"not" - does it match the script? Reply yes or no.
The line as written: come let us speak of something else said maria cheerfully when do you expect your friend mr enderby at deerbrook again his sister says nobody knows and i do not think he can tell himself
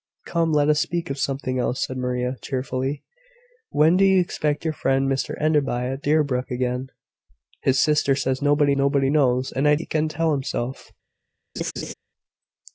no